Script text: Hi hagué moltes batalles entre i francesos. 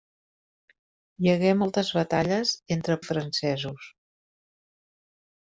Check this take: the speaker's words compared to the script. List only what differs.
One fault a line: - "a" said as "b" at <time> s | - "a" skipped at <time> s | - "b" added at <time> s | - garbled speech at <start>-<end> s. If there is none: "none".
none